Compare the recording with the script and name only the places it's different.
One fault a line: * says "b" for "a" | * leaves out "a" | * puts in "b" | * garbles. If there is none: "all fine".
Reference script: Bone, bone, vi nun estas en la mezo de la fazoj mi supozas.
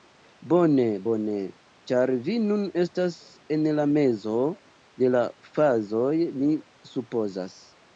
* puts in "ĉar"